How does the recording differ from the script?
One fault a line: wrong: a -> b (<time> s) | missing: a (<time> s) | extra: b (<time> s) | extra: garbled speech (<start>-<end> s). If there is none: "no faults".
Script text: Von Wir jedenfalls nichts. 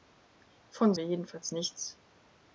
no faults